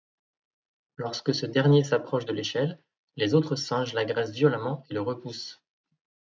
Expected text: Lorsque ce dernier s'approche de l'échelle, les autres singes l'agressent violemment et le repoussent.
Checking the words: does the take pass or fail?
pass